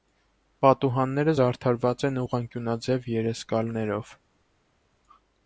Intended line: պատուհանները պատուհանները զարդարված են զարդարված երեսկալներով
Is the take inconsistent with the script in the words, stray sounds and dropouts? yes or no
yes